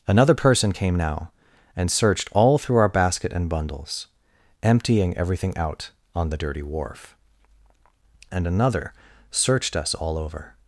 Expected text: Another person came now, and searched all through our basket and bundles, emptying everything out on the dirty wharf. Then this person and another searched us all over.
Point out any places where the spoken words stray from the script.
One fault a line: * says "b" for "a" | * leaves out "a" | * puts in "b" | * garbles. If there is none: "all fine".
* leaves out "Then this person"